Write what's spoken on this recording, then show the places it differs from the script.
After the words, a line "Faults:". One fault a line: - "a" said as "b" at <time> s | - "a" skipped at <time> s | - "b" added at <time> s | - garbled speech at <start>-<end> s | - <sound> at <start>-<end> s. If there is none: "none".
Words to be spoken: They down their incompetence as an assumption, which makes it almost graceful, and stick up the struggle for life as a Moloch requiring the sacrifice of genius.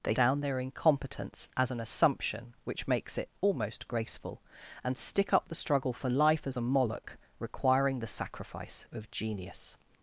They down their incompetence as an assumption, which makes it almost graceful, and stick up the struggle for life as a Moloch requiring the sacrifice of genius.
Faults:
none